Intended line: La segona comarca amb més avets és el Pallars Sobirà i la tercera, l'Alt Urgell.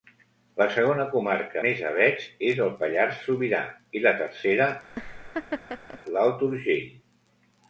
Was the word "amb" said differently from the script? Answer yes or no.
yes